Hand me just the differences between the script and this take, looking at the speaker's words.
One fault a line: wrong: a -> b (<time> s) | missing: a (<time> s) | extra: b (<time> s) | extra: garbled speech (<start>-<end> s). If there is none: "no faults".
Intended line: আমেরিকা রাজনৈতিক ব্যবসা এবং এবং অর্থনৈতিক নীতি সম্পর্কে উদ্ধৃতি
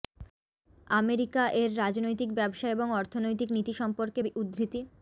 extra: এর (1.6 s)
missing: এবং (2.9 s)